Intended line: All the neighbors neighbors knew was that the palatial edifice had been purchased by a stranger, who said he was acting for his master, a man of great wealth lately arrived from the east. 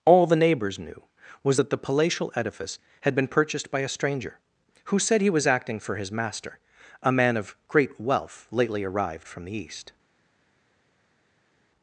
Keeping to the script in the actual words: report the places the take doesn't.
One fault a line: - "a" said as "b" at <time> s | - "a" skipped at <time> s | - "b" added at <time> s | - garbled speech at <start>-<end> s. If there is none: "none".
- "neighbors" skipped at 0.8 s